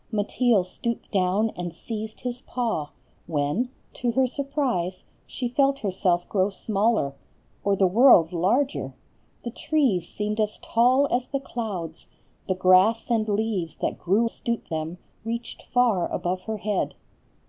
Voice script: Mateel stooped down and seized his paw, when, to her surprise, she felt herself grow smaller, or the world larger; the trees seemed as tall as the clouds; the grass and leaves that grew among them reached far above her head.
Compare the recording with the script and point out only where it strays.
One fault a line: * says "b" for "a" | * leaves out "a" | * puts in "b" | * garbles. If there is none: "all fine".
* says "stooped" for "among"